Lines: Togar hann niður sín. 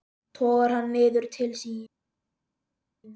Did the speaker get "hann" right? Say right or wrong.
right